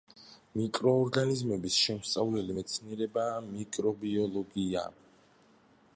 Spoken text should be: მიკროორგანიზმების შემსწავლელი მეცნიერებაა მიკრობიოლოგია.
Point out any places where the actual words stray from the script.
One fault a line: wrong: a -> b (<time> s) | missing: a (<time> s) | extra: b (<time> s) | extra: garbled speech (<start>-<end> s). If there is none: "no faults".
no faults